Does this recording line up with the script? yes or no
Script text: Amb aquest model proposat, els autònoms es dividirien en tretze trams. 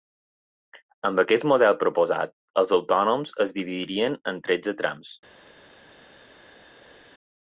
yes